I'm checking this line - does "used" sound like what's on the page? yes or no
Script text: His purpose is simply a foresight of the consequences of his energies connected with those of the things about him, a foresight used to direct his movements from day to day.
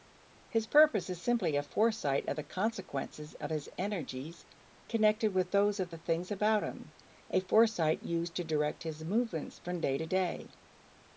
yes